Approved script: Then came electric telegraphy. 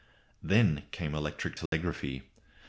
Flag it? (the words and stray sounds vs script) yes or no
yes